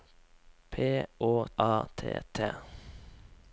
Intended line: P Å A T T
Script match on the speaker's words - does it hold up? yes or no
yes